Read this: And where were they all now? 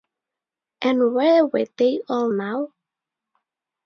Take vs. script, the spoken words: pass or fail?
pass